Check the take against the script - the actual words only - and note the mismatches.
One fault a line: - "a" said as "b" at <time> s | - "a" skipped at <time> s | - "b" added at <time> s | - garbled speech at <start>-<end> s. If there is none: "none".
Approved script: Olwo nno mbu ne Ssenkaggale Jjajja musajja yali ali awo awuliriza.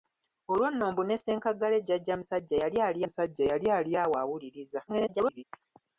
- "musajja yali ali" added at 3.0 s
- garbled speech at 4.9-5.4 s